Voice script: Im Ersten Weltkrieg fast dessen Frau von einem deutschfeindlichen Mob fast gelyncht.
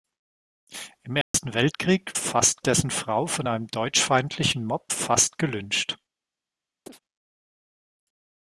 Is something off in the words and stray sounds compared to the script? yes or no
yes